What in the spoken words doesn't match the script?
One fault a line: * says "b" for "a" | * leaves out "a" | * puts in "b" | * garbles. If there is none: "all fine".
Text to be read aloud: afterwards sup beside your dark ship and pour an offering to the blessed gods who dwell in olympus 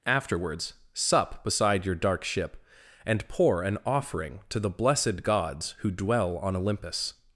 * says "on" for "in"